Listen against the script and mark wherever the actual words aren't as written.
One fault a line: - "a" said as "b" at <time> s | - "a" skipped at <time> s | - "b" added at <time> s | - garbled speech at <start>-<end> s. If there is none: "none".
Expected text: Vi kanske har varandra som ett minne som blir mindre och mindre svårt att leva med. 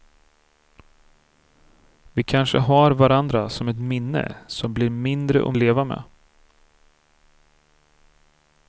- "mindre svårt att" skipped at 5.5 s